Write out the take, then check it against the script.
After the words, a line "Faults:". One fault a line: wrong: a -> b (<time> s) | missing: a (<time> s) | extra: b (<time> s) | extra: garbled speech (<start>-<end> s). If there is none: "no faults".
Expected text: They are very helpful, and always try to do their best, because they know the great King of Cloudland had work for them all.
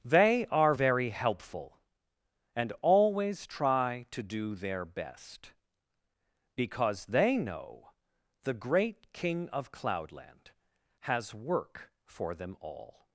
They are very helpful, and always try to do their best, because they know the great King of Cloudland has work for them all.
Faults:
wrong: had -> has (11.0 s)